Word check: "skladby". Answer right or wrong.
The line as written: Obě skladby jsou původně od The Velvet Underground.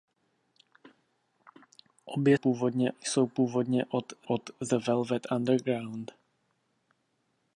wrong